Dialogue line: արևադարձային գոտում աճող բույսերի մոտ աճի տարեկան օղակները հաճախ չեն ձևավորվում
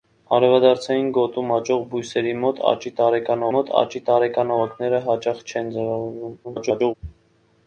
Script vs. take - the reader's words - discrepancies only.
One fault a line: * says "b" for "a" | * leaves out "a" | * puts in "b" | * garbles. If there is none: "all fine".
* puts in "մոտ աճի տարեկան"
* garbles